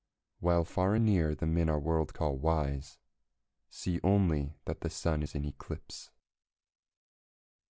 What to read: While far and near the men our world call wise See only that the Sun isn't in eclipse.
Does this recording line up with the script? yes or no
no